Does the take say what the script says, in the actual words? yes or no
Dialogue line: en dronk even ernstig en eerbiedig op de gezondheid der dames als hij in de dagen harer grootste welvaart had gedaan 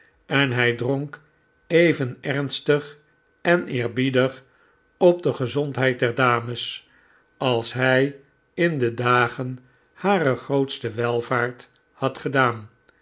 no